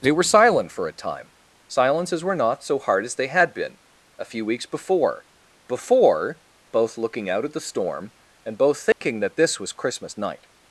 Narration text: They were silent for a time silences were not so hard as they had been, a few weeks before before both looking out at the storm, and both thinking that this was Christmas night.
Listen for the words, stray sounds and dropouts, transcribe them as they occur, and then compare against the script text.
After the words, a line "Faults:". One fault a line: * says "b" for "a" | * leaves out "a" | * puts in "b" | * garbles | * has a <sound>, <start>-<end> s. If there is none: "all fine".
They were silent for a time silences were not so hard as they had been, a few weeks before before both looking out at the storm, and both thinking that this was Christmas night.
Faults:
* has a dropout, 8.9-9.0 s